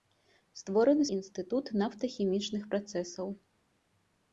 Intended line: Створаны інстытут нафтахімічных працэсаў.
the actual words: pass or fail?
pass